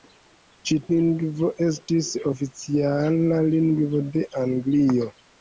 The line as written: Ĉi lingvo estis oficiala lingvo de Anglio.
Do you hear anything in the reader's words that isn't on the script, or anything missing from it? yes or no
no